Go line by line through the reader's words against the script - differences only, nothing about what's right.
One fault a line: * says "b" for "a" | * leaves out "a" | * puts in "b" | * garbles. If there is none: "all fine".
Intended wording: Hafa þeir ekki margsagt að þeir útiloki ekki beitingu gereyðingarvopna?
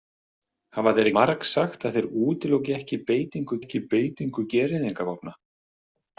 * leaves out "ekki"
* puts in "ekki beitingu"